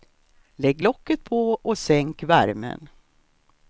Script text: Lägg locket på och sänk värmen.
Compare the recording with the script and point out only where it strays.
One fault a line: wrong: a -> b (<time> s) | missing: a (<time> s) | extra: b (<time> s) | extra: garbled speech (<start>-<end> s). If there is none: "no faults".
no faults